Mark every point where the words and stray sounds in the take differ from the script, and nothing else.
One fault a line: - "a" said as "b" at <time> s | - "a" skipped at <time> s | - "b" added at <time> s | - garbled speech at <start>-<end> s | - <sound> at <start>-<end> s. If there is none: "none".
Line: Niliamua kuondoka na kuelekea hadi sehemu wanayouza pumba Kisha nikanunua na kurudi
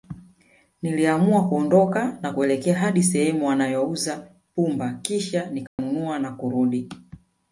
- dropout at 5.7-5.8 s